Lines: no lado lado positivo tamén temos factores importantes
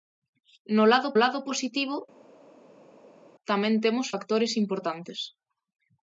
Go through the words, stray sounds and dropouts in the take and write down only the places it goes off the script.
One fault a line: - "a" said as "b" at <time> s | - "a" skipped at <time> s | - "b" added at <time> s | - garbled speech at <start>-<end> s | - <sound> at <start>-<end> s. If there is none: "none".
none